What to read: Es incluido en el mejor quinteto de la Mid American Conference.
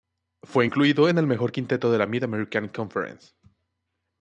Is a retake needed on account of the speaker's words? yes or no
yes